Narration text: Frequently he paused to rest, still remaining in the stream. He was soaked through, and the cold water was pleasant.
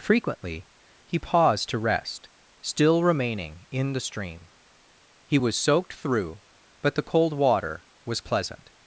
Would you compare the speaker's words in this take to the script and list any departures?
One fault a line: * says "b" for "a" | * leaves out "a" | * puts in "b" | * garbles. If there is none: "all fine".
* says "but" for "and"